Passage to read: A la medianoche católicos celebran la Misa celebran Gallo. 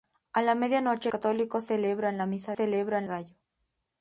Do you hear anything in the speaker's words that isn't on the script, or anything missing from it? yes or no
no